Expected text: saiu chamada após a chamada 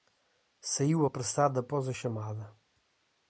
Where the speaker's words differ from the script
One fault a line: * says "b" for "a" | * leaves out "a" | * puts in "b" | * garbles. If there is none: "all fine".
* says "apressado" for "chamada"